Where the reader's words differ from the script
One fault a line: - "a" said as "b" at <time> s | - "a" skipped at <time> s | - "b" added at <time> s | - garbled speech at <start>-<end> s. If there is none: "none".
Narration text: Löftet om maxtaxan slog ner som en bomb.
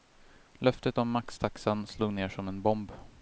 none